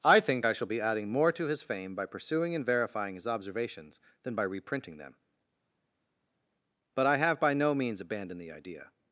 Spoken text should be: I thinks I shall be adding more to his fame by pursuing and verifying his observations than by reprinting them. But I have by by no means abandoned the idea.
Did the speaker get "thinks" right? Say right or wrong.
wrong